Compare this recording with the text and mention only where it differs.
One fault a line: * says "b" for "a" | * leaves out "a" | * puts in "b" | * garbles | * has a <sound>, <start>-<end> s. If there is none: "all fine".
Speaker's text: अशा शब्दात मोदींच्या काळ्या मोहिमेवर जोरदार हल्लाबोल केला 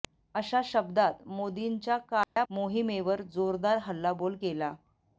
* has a dropout, 2.2-2.4 s